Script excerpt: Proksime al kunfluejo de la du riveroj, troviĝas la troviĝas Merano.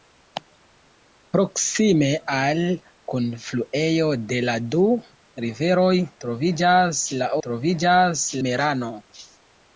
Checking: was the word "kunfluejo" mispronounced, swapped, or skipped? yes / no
no